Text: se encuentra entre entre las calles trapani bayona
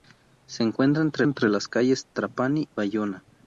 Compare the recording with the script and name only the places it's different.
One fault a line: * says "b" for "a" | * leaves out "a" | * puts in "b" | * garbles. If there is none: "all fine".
all fine